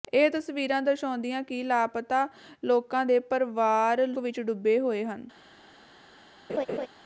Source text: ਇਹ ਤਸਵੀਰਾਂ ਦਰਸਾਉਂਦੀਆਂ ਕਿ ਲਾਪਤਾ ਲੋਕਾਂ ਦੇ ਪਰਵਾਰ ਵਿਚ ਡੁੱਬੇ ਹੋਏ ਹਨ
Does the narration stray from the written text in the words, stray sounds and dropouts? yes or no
yes